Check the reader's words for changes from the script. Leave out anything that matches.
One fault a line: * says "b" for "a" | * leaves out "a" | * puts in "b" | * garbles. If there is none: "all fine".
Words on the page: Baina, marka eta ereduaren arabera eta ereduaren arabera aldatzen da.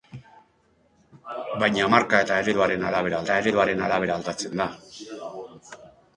all fine